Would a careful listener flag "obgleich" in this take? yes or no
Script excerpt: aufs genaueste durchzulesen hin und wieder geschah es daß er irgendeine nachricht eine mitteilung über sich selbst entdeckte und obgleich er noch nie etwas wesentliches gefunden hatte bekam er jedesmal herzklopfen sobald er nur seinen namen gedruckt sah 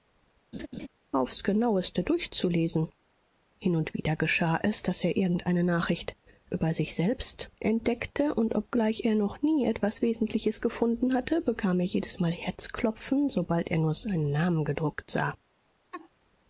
no